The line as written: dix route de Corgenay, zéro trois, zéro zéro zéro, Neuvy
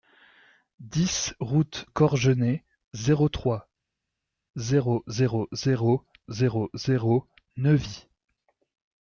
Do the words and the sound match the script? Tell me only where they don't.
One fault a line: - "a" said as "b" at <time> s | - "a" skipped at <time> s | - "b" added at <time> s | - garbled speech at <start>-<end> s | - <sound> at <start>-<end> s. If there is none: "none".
- "de" skipped at 1.9 s
- "zéro zéro" added at 6.3 s